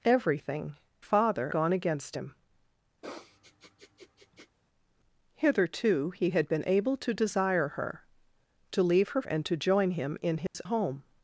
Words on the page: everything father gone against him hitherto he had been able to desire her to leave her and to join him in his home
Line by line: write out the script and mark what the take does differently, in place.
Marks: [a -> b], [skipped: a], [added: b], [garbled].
everything father gone against him hitherto he had been able to desire her to leave her and to join him in his home